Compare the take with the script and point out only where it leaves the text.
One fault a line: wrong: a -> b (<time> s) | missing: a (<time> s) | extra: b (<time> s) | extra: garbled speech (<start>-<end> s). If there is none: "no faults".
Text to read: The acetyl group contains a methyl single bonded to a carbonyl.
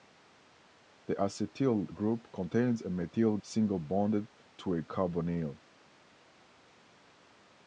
no faults